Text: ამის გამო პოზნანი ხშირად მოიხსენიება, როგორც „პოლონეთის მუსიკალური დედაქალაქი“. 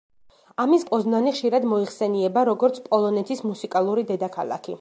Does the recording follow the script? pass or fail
fail